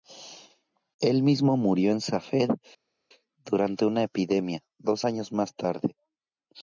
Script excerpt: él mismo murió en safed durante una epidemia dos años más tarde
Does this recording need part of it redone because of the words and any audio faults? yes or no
no